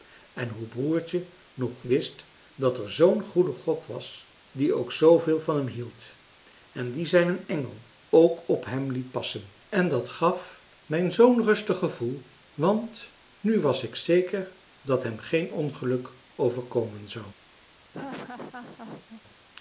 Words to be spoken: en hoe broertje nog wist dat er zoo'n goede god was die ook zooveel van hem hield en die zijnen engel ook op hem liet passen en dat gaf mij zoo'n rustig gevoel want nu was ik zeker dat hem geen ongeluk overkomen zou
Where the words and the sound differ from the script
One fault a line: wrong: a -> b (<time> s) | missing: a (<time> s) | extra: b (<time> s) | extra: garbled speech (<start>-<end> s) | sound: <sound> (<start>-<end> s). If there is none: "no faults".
sound: laugh (17.9-19.2 s)